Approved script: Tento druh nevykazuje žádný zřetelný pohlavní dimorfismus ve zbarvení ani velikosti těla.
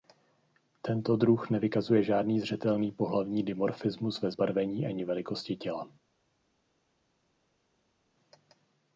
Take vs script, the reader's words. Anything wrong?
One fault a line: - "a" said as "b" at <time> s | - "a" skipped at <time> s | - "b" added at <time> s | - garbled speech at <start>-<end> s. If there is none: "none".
none